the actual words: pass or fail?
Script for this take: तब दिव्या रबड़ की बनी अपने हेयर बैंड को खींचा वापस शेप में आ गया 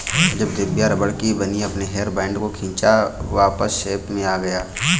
fail